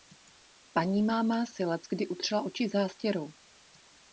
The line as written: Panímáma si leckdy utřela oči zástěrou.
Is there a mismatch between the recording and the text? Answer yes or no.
no